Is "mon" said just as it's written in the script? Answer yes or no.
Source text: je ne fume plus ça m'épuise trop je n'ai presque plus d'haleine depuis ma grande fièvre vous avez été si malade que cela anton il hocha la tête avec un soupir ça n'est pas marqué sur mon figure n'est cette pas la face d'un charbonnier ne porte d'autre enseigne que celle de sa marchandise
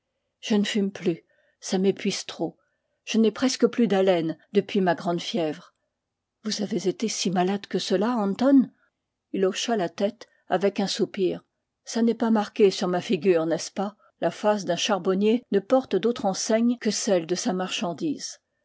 no